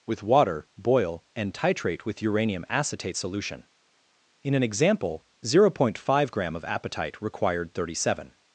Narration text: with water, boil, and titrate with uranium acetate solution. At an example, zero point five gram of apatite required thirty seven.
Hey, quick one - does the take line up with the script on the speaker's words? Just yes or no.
no